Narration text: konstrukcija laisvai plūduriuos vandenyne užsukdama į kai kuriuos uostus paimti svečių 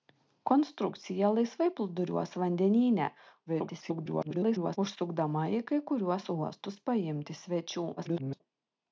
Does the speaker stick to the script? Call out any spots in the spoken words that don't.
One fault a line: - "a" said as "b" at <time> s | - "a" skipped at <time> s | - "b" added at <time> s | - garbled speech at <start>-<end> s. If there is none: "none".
- garbled speech at 3.5-4.8 s
- garbled speech at 8.0-8.4 s